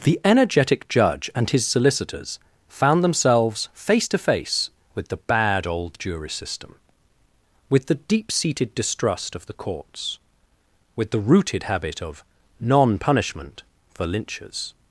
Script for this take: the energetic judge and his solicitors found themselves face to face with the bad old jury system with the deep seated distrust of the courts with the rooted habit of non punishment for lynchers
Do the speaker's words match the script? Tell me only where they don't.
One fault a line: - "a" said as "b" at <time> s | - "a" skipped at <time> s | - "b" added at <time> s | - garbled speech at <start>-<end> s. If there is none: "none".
none